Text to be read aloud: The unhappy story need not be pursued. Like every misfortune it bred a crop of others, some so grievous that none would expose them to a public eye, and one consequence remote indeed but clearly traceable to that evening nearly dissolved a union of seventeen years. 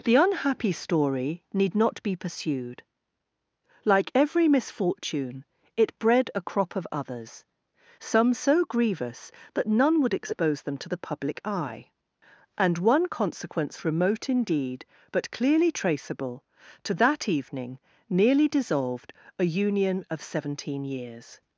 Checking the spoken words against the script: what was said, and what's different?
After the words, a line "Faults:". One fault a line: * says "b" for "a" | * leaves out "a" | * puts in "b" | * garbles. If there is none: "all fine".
The unhappy story need not be pursued. Like every misfortune it bred a crop of others, some so grievous that none would expose them to the public eye, and one consequence remote indeed but clearly traceable to that evening nearly dissolved a union of seventeen years.
Faults:
* says "the" for "a"